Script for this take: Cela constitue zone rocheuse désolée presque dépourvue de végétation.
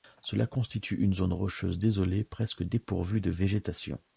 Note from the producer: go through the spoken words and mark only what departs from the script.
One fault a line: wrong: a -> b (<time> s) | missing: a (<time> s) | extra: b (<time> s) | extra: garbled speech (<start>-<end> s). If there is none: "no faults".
extra: une (1.0 s)